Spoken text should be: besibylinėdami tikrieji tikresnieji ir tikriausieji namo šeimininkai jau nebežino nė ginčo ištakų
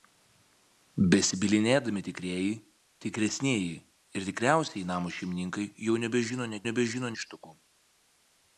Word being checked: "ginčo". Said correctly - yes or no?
no